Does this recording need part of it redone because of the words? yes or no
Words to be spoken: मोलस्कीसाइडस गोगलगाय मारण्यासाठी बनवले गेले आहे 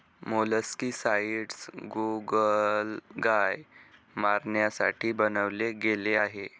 no